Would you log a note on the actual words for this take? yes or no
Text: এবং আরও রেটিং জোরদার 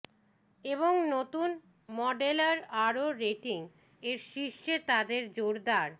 yes